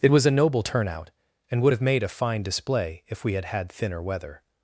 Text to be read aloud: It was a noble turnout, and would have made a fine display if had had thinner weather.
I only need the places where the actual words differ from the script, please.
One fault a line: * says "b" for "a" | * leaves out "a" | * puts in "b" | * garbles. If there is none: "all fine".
* puts in "we"